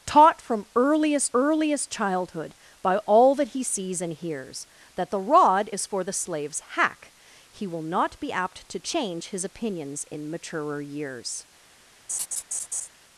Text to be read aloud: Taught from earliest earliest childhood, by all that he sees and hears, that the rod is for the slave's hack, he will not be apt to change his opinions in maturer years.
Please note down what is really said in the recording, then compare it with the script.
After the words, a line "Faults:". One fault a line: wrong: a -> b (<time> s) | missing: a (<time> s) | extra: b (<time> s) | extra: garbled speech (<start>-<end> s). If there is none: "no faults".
Taught from earliest earliest childhood, by all that he sees and hears, that the rod is for the slave's hack, he will not be apt to change his opinions in maturer years.
Faults:
no faults